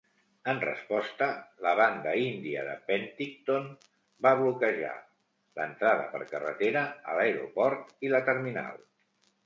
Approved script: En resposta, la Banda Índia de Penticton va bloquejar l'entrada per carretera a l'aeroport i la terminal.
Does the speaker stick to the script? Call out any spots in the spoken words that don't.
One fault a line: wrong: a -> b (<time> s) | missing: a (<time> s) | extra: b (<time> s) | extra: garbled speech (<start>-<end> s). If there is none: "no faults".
no faults